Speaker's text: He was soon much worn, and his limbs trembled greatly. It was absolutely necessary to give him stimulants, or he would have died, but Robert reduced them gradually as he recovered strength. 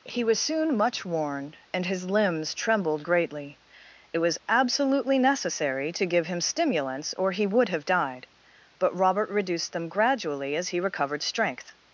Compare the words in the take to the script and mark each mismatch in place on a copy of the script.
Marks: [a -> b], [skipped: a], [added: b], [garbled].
He was soon much worn, and his limbs trembled greatly. It was absolutely necessary to give him stimulants, or he would have died, but Robert reduced them gradually as he recovered strength.